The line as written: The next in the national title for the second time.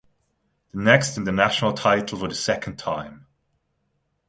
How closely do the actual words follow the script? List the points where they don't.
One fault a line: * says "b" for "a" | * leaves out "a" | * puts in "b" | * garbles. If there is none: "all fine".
all fine